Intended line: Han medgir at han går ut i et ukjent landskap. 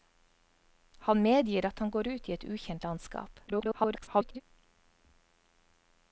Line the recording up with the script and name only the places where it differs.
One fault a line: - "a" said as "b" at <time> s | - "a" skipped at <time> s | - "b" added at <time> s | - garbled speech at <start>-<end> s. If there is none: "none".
- garbled speech at 3.5-4.4 s